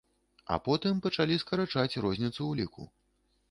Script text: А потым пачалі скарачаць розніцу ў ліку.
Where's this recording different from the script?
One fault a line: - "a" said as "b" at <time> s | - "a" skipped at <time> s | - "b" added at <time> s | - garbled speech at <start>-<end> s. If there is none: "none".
none